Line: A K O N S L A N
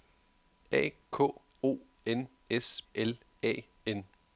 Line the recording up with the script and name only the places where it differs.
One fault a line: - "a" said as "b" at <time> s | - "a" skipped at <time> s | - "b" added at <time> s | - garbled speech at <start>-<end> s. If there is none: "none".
none